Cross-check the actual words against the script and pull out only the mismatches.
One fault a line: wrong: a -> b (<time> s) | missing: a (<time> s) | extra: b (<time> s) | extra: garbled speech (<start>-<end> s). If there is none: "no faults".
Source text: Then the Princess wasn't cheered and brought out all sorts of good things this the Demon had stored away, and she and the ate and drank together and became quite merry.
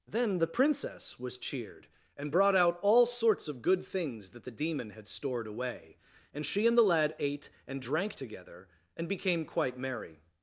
wrong: wasn't -> was (1.2 s)
wrong: this -> that (4.3 s)
extra: lad (6.8 s)